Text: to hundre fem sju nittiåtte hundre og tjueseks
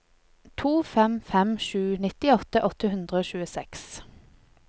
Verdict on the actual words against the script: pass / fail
fail